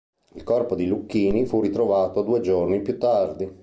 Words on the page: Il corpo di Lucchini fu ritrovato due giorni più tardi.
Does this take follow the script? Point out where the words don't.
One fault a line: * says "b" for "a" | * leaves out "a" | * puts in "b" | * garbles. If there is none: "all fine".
all fine